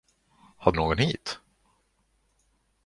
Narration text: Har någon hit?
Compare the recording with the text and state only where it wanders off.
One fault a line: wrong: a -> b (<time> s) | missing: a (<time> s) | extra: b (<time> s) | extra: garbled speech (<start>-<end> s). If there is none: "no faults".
no faults